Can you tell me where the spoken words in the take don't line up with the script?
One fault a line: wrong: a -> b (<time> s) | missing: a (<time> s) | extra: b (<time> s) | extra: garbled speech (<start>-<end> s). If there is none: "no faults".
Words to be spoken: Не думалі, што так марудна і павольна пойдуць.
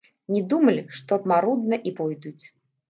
missing: так (1.2 s)
missing: павольна (2.0 s)